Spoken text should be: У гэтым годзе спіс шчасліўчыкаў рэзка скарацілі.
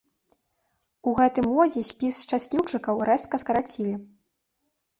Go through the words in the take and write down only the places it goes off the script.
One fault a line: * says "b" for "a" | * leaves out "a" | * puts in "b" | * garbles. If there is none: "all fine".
all fine